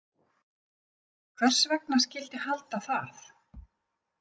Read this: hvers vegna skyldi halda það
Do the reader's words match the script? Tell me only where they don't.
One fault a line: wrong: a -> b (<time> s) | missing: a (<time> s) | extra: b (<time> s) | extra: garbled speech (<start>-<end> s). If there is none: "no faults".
no faults